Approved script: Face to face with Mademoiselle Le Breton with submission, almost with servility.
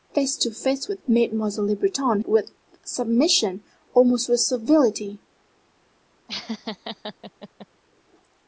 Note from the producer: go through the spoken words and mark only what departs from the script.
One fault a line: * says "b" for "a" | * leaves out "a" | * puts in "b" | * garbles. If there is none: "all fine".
all fine